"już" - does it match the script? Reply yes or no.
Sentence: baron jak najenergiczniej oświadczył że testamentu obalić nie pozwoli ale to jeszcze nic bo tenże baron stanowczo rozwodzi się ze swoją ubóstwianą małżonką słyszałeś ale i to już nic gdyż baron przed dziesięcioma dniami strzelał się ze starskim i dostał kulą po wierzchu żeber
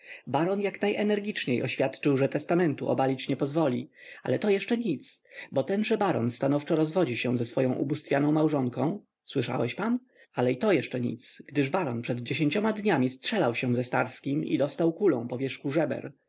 no